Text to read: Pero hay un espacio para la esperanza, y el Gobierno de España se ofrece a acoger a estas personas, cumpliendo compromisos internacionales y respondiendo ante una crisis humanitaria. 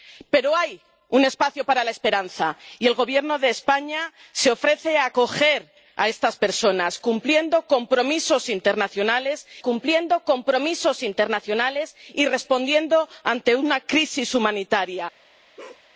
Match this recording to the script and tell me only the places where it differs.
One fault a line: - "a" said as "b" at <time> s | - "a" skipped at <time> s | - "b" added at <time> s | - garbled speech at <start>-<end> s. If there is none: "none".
- "cumpliendo compromisos internacionales" added at 9.6 s